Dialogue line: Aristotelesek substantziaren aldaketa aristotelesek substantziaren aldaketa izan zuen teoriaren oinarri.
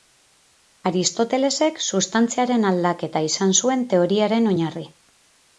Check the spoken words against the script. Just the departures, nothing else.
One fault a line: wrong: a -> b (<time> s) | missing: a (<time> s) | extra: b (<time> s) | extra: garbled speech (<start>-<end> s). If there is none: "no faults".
missing: aristotelesek substantziaren aldaketa (3.2 s)